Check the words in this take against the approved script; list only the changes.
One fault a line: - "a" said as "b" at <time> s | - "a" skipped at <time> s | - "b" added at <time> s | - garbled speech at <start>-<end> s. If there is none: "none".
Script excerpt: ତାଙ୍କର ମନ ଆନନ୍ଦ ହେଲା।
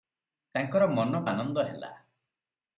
none